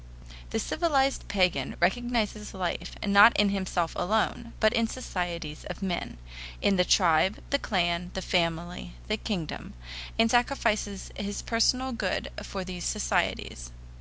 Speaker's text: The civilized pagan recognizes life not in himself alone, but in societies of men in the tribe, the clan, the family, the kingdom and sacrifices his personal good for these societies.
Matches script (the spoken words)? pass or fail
pass